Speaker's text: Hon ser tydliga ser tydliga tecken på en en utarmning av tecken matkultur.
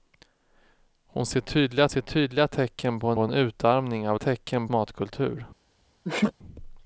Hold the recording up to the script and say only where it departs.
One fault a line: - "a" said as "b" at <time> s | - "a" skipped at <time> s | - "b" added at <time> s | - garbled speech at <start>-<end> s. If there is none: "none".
none